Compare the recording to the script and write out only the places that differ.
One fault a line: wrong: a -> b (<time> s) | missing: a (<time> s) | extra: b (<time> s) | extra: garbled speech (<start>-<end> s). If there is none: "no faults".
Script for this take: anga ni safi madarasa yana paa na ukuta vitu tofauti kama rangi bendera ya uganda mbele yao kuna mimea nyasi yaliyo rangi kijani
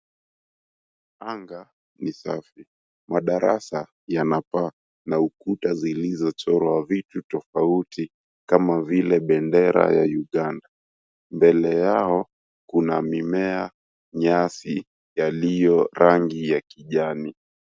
extra: zilizochorwa (5.7 s)
wrong: rangi -> vile (8.8 s)
extra: ya (16.5 s)